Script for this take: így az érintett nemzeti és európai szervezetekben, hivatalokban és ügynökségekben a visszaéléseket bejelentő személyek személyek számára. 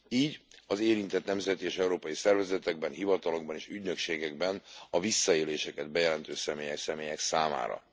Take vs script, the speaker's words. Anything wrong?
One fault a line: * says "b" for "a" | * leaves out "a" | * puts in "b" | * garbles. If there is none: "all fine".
all fine